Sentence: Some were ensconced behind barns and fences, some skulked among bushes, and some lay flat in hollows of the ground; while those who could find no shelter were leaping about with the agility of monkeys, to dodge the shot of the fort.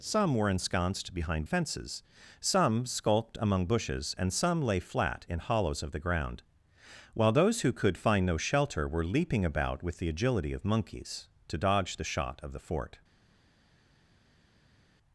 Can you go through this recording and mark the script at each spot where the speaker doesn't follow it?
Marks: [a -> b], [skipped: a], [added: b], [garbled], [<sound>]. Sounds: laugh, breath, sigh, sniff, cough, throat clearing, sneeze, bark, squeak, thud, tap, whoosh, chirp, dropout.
Some were ensconced behind [skipped: barns and] fences, some skulked among bushes, and some lay flat in hollows of the ground; while those who could find no shelter were leaping about with the agility of monkeys, to dodge the shot of the fort.